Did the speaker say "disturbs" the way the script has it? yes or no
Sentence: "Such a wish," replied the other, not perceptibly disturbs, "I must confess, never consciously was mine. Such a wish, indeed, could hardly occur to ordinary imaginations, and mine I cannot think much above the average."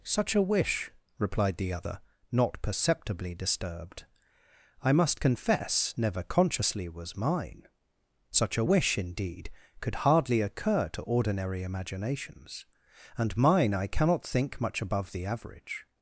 no